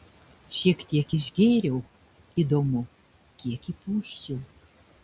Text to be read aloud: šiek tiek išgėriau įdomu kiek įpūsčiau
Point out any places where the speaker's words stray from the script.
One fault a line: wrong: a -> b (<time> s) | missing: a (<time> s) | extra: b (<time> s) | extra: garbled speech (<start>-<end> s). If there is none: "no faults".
no faults